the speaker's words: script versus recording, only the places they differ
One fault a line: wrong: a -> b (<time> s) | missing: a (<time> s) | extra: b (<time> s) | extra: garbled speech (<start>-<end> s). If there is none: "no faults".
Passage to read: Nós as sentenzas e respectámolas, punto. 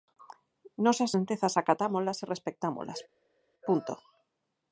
extra: acatámolas (1.6 s)